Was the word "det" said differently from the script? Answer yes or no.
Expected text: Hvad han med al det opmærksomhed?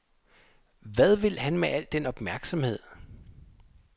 yes